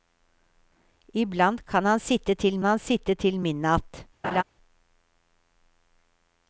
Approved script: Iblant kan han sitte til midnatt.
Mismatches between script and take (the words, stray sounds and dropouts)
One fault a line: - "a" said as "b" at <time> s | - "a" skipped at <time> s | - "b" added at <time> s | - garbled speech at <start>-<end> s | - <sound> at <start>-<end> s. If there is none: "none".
- "han sitte til" added at 2.6 s
- laugh at 4.2-4.4 s